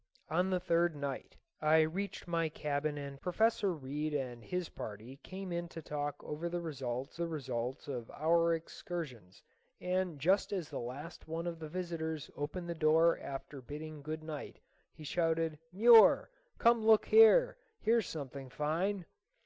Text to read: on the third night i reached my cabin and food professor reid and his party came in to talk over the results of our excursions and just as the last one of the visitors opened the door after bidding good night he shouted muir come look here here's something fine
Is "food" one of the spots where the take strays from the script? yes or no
yes